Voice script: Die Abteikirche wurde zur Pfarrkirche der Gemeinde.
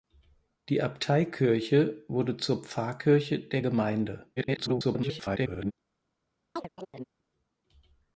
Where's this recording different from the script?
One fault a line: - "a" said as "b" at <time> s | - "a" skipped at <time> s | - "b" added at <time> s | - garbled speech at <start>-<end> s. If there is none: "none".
- garbled speech at 4.4-5.7 s